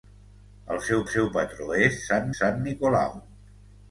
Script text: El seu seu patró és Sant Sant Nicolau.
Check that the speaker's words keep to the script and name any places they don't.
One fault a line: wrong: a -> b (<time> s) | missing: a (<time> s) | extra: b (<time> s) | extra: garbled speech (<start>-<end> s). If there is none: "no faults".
no faults